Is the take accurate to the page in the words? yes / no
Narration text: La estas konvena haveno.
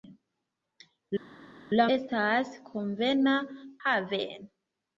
yes